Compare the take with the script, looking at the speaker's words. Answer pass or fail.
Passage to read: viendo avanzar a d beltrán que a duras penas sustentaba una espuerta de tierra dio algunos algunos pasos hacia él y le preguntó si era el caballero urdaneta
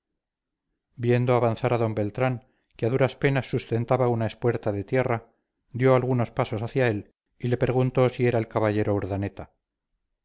fail